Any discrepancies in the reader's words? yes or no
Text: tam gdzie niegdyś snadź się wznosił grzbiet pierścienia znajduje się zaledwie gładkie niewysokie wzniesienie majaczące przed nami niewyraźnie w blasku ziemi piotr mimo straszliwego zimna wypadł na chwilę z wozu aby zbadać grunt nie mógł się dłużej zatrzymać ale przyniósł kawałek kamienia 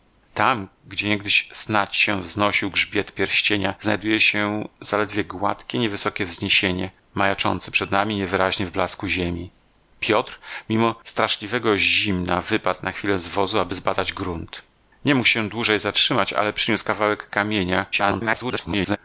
yes